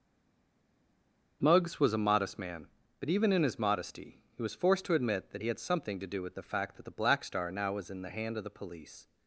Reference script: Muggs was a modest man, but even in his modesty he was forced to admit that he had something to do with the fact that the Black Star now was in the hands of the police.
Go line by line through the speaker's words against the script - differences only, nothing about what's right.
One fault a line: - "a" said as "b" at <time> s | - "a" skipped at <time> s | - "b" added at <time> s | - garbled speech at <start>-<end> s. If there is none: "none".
- "hands" said as "hand" at 8.1 s